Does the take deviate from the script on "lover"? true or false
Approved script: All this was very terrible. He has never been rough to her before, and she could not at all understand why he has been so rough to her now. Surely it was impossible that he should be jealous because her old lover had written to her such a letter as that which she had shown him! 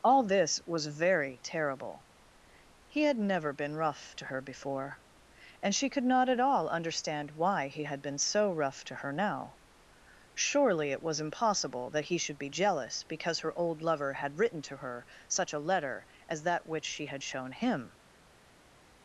false